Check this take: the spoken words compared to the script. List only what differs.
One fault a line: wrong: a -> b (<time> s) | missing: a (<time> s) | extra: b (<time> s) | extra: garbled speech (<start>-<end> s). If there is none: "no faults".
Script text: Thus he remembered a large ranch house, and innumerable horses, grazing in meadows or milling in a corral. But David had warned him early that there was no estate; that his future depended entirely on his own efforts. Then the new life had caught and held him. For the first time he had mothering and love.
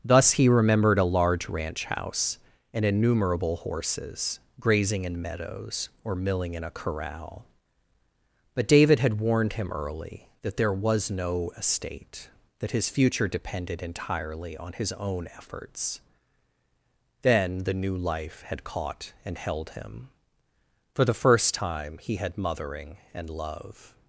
no faults